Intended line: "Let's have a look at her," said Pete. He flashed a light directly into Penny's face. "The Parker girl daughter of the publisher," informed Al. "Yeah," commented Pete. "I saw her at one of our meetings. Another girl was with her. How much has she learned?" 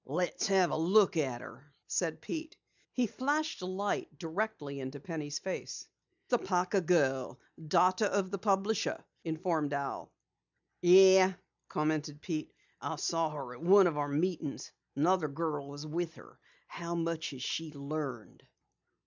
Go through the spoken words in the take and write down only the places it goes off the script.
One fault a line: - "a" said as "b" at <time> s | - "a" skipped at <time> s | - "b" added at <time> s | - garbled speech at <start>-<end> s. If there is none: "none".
none